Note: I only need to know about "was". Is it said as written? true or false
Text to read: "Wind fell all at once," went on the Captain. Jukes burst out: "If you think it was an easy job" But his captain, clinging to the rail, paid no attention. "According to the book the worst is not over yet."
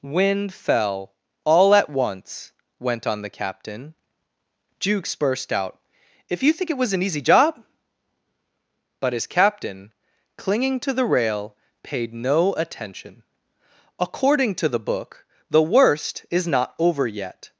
true